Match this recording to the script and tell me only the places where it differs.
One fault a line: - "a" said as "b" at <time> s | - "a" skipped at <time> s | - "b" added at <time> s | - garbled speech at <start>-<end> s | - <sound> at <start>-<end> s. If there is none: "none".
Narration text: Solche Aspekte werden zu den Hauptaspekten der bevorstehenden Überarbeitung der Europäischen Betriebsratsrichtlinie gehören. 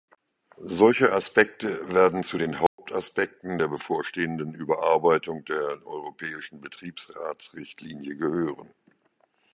- dropout at 2.7-2.8 s